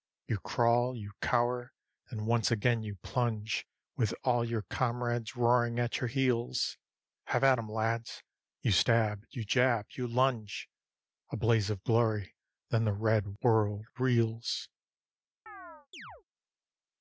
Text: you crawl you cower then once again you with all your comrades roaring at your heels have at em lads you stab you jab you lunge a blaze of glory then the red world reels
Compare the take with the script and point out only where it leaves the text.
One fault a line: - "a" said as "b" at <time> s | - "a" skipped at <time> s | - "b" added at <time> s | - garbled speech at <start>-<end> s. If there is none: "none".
- "plunge" added at 3.0 s